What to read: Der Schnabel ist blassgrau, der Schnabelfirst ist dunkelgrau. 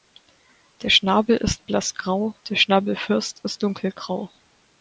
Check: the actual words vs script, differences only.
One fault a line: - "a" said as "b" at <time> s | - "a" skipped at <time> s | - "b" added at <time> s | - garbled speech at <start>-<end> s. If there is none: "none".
none